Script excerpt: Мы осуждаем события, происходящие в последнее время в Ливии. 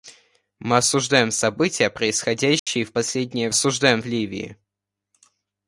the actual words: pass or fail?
fail